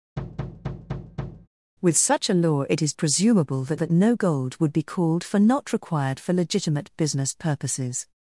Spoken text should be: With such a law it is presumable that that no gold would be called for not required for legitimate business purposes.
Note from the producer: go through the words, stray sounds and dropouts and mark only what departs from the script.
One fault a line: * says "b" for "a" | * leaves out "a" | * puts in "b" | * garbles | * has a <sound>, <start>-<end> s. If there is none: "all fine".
* has a thud, 0.2-1.5 s